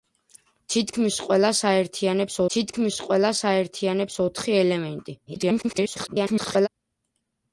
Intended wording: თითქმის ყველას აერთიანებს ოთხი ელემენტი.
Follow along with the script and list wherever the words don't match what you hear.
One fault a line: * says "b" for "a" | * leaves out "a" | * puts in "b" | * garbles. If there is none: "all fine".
* puts in "თითქმის ყველას აერთიანებს"
* garbles